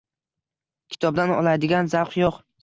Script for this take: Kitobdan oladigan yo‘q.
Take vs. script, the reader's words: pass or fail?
fail